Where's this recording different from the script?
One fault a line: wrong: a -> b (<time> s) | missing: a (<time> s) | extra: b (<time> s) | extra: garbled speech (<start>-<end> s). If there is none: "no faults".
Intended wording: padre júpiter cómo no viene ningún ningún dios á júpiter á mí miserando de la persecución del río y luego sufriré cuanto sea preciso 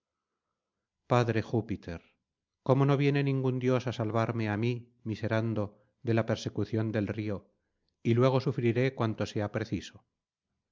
missing: ningún (3.5 s)
wrong: júpiter -> salvarme (4.0 s)